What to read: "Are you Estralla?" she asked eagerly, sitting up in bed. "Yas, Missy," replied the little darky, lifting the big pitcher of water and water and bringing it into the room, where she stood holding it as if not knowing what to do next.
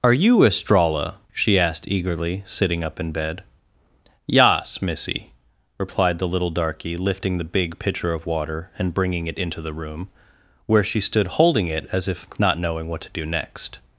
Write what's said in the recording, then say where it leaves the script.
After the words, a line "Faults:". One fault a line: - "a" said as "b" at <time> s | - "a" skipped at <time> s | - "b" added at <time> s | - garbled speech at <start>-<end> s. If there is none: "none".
"Are you Estralla?" she asked eagerly, sitting up in bed. "Yas, Missy," replied the little darky, lifting the big pitcher of water and bringing it into the room, where she stood holding it as if not knowing what to do next.
Faults:
- "water and" skipped at 8.9 s